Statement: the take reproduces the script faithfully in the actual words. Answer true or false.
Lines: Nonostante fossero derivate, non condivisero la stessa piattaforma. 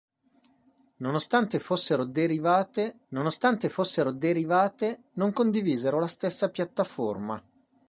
false